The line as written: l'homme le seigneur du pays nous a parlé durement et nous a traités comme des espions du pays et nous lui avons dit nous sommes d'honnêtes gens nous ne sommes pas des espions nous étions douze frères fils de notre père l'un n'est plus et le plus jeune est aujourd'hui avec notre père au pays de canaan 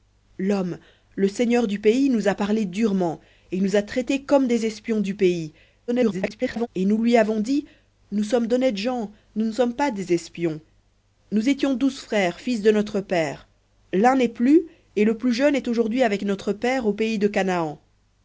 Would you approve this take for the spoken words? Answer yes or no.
no